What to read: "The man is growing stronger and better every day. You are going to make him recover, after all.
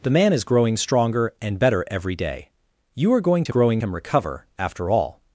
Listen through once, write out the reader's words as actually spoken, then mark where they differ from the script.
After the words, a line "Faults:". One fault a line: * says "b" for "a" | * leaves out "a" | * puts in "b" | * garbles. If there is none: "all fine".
"The man is growing stronger and better every day. You are going to growing him recover, after all.
Faults:
* says "growing" for "make"